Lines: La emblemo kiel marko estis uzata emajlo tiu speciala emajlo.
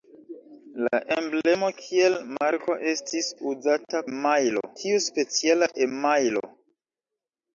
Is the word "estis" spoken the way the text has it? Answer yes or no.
yes